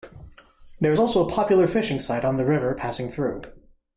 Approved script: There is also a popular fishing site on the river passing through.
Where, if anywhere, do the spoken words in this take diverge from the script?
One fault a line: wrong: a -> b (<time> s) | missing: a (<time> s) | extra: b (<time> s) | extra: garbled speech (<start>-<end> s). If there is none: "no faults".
no faults